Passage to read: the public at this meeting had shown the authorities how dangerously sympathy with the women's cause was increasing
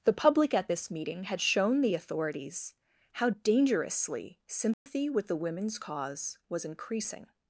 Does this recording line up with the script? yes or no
yes